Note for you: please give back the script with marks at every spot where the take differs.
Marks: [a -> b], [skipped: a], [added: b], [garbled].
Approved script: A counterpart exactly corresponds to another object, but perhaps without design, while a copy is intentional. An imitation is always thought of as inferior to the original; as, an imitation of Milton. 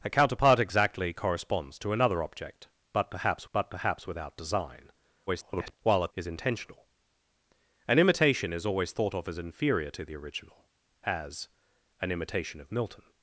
A counterpart exactly corresponds to another object, but perhaps [added: but perhaps] without design, [garbled] while a [skipped: copy] is intentional. An imitation is always thought of as inferior to the original; as, an imitation of Milton.